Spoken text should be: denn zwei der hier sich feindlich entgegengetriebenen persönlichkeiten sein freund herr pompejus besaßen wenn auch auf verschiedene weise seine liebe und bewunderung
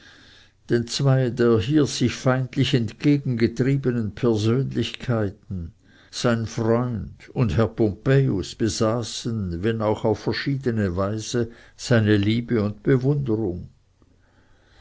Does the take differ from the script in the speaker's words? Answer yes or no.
yes